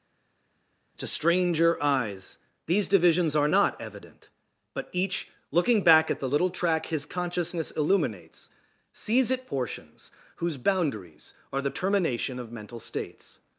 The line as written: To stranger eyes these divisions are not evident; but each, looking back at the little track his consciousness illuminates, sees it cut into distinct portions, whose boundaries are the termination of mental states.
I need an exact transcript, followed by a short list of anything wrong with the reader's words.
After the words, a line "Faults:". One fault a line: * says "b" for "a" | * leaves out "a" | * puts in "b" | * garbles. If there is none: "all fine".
To stranger eyes these divisions are not evident; but each, looking back at the little track his consciousness illuminates, sees it portions, whose boundaries are the termination of mental states.
Faults:
* leaves out "cut into distinct"